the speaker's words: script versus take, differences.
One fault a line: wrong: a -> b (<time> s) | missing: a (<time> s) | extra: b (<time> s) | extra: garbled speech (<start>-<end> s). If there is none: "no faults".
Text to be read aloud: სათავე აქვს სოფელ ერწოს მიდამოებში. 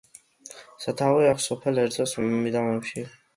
no faults